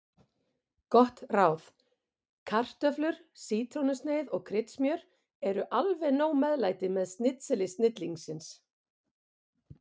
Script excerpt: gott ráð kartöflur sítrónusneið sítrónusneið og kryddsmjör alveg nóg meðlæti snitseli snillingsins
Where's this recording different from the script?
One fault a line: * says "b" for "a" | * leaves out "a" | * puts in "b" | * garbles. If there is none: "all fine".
* leaves out "sítrónusneið"
* puts in "eru"
* puts in "með"